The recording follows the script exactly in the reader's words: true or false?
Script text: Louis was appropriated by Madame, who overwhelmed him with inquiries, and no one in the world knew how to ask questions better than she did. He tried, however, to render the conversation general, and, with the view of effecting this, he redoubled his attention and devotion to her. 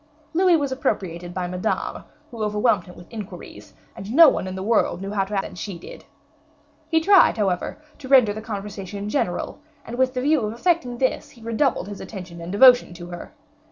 false